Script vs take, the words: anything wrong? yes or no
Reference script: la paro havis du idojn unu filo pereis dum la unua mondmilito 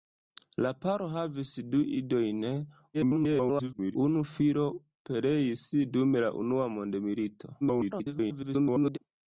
yes